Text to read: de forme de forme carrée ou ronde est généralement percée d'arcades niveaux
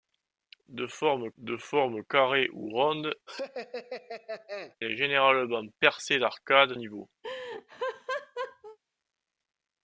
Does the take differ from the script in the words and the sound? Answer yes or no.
yes